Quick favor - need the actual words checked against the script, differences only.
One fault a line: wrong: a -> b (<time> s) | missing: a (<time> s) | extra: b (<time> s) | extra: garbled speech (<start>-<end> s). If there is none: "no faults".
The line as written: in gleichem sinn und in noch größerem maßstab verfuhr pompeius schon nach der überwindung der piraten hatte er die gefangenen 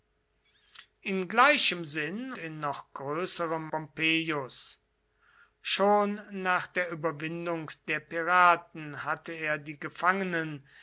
missing: und (2.3 s)
missing: maßstab verfuhr (3.7 s)